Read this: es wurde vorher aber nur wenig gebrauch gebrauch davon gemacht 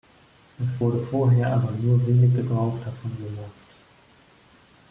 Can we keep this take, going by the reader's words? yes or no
no